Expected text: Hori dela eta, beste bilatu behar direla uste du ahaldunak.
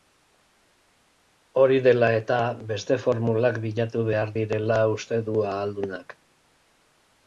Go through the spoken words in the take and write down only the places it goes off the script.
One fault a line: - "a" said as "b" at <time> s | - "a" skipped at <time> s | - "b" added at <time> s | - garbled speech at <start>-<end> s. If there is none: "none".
- "formulak" added at 3.0 s